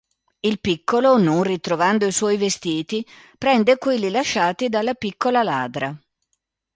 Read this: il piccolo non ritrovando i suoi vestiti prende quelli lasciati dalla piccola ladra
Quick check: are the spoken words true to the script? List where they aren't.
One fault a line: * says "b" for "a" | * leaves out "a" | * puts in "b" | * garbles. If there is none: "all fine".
all fine